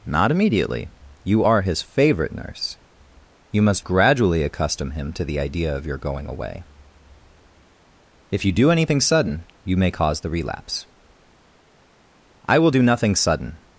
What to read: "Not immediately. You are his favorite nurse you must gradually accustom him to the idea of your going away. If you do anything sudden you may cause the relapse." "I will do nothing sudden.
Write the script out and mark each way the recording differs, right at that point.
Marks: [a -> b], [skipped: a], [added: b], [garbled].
"Not immediately. You are his favorite nurse you must gradually accustom him to the idea of your going away. If you do anything sudden you may cause the relapse." "I will do nothing sudden.